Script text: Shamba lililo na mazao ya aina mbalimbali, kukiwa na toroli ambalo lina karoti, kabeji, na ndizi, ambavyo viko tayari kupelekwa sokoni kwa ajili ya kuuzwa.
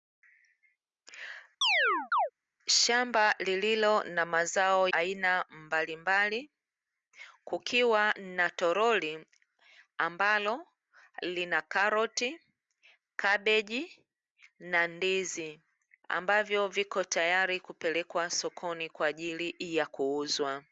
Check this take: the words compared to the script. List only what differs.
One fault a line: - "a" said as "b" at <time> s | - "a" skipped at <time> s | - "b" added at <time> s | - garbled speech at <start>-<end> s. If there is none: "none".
- "ya" skipped at 4.9 s